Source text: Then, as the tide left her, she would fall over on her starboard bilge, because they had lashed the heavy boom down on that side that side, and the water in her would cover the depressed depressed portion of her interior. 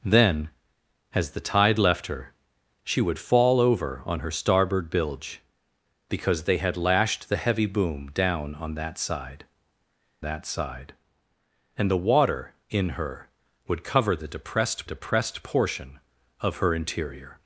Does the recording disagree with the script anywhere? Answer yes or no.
no